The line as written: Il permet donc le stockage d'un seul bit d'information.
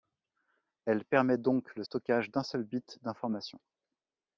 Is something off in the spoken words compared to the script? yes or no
yes